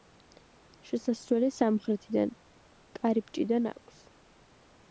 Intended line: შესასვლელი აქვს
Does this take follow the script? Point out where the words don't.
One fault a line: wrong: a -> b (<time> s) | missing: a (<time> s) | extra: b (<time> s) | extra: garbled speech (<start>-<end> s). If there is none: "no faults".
extra: სამხრეთიდან კარიბჭიდან (1.6 s)